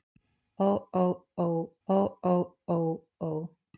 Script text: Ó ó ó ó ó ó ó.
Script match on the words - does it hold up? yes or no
yes